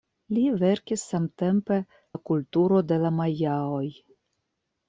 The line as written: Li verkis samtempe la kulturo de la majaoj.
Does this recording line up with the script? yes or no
yes